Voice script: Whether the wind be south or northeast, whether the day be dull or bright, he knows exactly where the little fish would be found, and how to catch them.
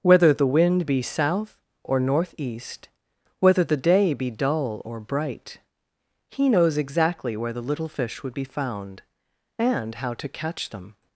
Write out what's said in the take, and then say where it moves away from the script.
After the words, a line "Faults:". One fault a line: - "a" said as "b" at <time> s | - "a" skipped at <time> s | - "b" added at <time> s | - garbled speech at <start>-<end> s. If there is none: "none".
Whether the wind be south or northeast, whether the day be dull or bright, he knows exactly where the little fish would be found, and how to catch them.
Faults:
none